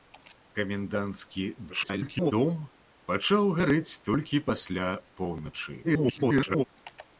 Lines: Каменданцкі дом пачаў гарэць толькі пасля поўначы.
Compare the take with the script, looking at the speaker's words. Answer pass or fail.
fail